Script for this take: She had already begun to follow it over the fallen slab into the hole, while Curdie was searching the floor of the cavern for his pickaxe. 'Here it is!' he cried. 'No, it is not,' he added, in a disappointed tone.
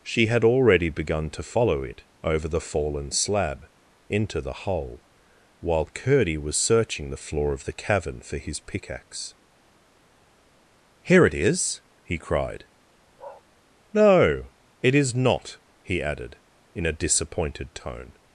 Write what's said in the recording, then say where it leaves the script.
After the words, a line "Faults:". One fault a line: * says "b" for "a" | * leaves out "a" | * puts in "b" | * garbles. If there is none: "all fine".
She had already begun to follow it over the fallen slab into the hole, while Curdie was searching the floor of the cavern for his pickaxe. 'Here it is!' he cried. 'No, it is not,' he added, in a disappointed tone.
Faults:
all fine